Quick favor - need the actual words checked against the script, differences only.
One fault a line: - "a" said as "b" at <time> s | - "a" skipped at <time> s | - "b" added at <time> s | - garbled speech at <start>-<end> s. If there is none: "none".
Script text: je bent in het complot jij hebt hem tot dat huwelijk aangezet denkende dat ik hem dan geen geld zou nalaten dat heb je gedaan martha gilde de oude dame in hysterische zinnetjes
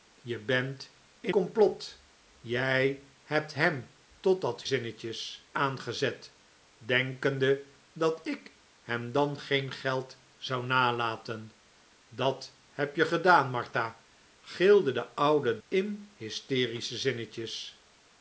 - "het" skipped at 1.4 s
- "huwelijk" said as "zinnetjes" at 4.6 s
- "dame" skipped at 15.6 s